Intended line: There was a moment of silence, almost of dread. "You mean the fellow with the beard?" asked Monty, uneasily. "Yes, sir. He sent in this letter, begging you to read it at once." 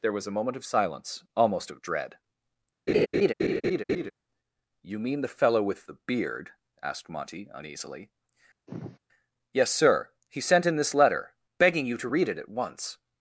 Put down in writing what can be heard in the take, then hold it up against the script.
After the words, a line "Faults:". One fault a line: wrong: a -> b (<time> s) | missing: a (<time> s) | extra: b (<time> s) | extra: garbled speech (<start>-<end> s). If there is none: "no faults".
There was a moment of silence, almost of dread. "You mean the fellow with the beard?" asked Monty, uneasily. "Yes, sir. He sent in this letter, begging you to read it at once."
Faults:
no faults